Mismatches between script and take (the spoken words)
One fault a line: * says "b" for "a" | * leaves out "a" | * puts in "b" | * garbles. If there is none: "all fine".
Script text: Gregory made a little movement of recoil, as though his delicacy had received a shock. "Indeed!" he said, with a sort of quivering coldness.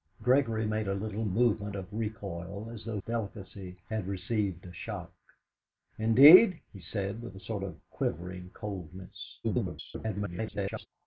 * leaves out "his"
* garbles